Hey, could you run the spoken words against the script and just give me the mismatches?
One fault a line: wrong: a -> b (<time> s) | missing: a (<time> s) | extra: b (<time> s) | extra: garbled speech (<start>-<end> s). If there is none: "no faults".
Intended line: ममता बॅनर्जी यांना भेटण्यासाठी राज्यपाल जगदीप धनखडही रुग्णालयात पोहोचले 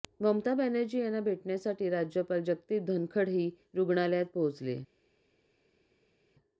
no faults